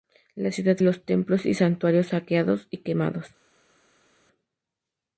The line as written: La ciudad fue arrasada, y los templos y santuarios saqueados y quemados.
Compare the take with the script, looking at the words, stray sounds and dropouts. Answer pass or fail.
fail